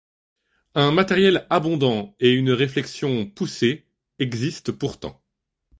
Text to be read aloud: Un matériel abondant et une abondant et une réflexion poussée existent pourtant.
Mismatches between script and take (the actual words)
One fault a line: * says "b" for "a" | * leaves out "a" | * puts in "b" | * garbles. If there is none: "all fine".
* leaves out "abondant et une"